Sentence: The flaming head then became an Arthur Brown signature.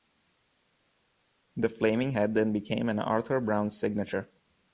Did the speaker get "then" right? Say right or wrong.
right